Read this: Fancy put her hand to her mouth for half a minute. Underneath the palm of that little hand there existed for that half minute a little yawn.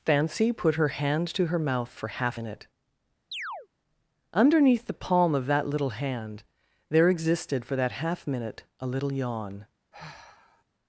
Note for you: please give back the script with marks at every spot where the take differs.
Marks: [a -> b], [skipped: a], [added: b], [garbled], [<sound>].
Fancy put her hand to her mouth for half [skipped: a] minute. [chirp] Underneath the palm of that little hand there existed for that half minute a little yawn. [sigh]